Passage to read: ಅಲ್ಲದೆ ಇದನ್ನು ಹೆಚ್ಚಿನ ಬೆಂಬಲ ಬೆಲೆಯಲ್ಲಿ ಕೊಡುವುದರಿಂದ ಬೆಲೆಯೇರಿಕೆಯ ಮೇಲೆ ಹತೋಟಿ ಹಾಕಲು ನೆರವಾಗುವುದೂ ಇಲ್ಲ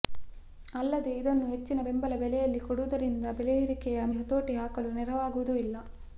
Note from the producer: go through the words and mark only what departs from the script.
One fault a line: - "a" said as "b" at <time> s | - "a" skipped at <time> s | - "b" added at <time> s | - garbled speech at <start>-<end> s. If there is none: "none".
- "ಮೇಲೆ" skipped at 4.0 s